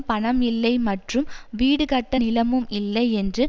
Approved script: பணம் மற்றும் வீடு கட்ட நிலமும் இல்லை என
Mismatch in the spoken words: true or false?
true